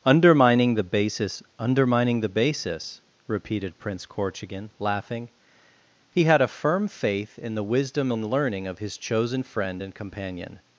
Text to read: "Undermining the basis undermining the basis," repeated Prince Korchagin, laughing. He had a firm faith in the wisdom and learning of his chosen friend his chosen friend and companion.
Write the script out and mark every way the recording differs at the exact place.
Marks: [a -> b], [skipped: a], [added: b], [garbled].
"Undermining the basis undermining the basis," repeated Prince Korchagin, laughing. He had a firm faith in the wisdom and learning of his chosen friend [skipped: his chosen friend] and companion.